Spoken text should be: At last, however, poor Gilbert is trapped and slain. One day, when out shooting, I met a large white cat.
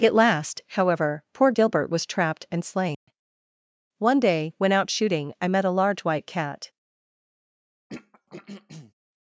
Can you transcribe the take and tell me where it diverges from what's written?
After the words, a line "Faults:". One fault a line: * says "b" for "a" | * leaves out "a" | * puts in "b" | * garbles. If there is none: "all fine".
At last, however, poor Gilbert was trapped and slain. One day, when out shooting, I met a large white cat.
Faults:
* says "was" for "is"